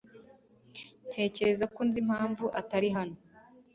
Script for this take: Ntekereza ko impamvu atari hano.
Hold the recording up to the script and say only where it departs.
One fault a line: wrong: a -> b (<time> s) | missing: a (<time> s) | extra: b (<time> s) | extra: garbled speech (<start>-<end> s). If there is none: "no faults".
extra: nzi (1.9 s)